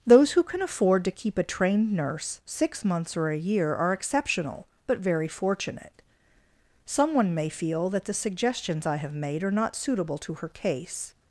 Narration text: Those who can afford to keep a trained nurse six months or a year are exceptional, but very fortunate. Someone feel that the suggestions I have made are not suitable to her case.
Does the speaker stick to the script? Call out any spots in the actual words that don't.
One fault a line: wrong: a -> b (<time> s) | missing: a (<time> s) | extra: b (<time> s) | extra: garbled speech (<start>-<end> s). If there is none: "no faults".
extra: may (7.3 s)